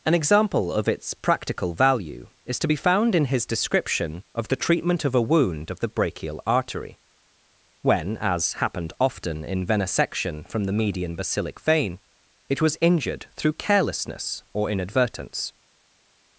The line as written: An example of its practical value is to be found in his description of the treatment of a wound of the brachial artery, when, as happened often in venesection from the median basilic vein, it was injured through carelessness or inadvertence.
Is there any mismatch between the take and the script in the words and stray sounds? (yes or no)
no